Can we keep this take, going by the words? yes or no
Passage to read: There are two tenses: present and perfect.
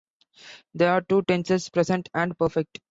yes